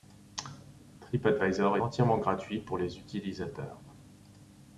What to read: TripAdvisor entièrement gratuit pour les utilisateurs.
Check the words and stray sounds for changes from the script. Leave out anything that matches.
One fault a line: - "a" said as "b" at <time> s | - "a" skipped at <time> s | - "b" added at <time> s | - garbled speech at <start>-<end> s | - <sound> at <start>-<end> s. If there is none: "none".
none